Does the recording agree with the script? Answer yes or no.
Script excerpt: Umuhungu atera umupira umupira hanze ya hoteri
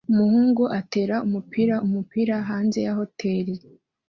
yes